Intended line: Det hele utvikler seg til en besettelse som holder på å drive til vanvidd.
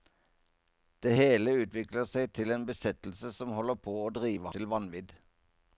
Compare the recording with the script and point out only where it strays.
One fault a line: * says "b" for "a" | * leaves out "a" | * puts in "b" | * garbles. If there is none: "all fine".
all fine